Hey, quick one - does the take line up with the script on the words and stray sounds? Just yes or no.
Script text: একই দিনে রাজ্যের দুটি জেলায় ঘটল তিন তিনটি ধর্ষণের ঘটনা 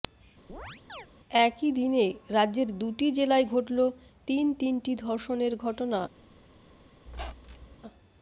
no